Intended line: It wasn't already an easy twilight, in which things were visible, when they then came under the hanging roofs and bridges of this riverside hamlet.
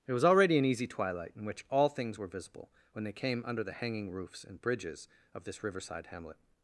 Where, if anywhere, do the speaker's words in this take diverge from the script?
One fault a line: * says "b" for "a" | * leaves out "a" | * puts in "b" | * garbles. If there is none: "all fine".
* says "was" for "wasn't"
* puts in "all"
* leaves out "then"